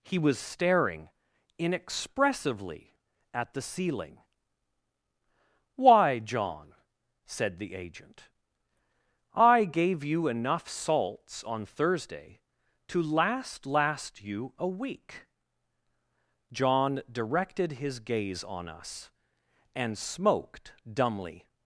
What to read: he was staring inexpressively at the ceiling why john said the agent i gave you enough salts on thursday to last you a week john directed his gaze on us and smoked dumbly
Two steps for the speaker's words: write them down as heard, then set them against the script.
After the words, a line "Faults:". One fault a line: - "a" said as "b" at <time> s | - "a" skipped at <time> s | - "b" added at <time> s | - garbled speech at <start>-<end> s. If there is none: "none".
he was staring inexpressively at the ceiling why john said the agent i gave you enough salts on thursday to last last you a week john directed his gaze on us and smoked dumbly
Faults:
- "last" added at 13.7 s